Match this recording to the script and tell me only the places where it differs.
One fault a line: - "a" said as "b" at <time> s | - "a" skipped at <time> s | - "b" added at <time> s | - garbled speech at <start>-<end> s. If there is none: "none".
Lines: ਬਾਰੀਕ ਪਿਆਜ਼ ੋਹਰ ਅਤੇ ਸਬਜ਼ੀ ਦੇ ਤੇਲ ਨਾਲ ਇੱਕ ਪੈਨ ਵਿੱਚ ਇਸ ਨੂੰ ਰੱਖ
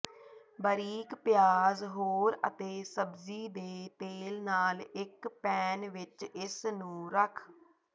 none